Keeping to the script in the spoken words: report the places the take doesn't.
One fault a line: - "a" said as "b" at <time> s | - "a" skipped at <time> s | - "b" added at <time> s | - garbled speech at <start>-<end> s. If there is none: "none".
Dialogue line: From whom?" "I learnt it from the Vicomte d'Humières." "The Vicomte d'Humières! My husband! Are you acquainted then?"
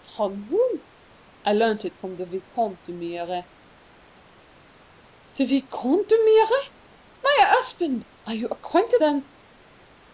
none